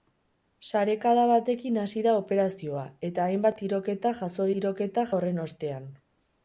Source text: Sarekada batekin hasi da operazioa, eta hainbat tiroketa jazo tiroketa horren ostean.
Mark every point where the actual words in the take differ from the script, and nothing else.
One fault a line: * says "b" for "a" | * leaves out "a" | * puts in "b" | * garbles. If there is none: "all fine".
all fine